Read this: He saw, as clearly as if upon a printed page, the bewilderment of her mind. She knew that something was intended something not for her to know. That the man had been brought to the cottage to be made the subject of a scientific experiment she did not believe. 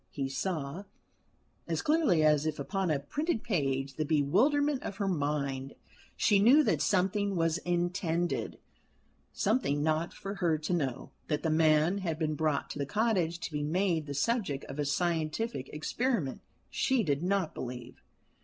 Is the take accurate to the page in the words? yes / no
yes